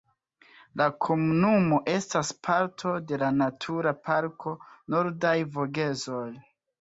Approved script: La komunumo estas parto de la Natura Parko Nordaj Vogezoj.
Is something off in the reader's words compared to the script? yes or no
no